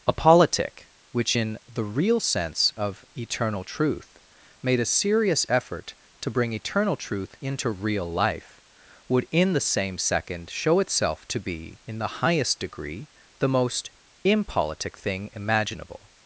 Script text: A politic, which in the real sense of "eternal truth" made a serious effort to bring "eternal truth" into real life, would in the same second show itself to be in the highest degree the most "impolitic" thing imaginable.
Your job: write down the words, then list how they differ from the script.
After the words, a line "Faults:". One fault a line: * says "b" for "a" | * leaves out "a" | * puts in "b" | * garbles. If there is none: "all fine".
A politic, which in the real sense of "eternal truth" made a serious effort to bring "eternal truth" into real life, would in the same second show itself to be in the highest degree the most "impolitic" thing imaginable.
Faults:
all fine